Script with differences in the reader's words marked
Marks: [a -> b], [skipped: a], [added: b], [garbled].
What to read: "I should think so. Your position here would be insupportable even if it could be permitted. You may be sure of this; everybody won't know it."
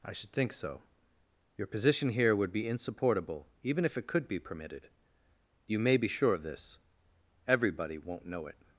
"I should think so. Your position here would be insupportable even if it could be permitted. You may be sure of this; everybody won't know it."